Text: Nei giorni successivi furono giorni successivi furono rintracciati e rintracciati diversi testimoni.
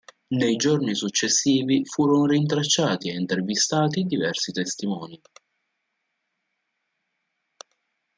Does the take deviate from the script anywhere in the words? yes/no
yes